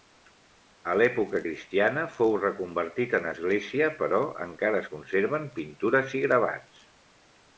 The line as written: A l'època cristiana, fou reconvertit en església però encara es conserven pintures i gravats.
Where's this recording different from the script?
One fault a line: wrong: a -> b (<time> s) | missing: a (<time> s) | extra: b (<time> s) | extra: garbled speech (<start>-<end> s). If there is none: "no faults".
no faults